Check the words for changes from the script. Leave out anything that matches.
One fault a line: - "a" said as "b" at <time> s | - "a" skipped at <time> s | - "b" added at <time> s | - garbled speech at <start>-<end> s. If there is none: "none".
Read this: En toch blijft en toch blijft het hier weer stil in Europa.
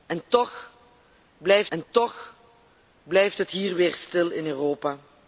none